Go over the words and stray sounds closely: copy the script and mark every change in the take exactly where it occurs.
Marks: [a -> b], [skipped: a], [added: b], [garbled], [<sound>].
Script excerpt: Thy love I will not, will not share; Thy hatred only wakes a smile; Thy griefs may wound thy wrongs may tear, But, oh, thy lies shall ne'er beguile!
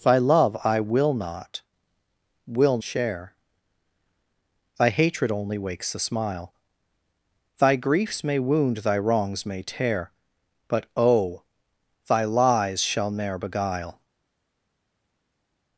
Thy love I will not, will [skipped: not] share; Thy hatred only wakes a smile; Thy griefs may wound thy wrongs may tear, But, oh, thy lies shall ne'er beguile!